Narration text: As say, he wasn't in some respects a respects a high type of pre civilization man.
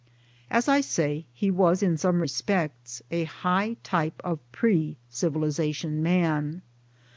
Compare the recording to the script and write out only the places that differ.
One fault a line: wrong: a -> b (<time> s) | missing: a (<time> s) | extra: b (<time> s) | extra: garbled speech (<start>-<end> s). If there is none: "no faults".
extra: I (0.7 s)
wrong: wasn't -> was (1.5 s)
missing: respects a (3.2 s)